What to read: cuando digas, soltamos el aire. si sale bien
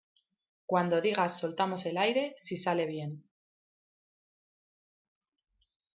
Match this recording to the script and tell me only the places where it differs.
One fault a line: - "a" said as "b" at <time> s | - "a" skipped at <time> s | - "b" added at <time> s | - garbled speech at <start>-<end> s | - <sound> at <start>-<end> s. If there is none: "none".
none